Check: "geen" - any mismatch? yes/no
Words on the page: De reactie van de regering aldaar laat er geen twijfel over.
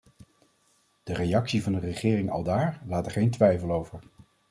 no